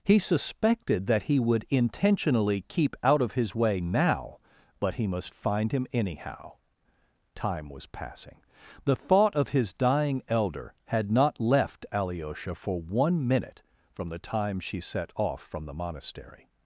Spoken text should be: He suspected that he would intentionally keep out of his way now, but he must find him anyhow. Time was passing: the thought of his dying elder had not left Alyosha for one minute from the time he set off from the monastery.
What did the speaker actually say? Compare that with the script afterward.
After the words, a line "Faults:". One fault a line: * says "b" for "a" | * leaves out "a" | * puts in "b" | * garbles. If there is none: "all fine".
He suspected that he would intentionally keep out of his way now, but he must find him anyhow. Time was passing: the thought of his dying elder had not left Alyosha for one minute from the time she set off from the monastery.
Faults:
* says "she" for "he"